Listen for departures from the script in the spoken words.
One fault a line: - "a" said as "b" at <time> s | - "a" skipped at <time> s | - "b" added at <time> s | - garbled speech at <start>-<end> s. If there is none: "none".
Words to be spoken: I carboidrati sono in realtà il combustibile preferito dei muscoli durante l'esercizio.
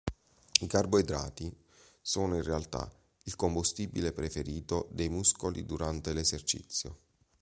none